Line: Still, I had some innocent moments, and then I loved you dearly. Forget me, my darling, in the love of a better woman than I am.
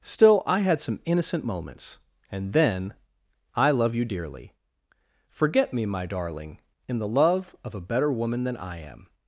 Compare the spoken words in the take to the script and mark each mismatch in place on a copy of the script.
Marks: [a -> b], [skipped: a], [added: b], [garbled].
Still, I had some innocent moments, and then I [loved -> love] you dearly. Forget me, my darling, in the love of a better woman than I am.